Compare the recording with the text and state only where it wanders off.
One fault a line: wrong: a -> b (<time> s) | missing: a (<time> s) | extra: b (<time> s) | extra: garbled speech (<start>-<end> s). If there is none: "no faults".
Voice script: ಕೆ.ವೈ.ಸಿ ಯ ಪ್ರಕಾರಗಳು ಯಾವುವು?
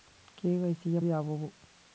missing: ಪ್ರಕಾರಗಳು (1.0 s)